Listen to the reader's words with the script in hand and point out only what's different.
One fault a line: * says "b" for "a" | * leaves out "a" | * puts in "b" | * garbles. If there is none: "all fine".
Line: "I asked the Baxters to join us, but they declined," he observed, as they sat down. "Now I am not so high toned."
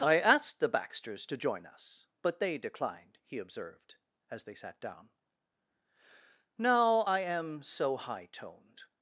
* leaves out "not"